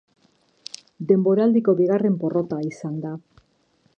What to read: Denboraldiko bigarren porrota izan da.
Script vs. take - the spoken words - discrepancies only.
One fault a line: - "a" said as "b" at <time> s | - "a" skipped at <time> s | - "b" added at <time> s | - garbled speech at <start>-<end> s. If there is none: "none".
none